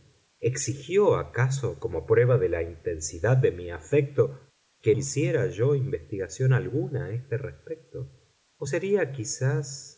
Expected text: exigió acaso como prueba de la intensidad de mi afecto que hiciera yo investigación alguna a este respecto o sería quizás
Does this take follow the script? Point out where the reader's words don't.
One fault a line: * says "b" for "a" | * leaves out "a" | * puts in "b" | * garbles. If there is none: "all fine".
all fine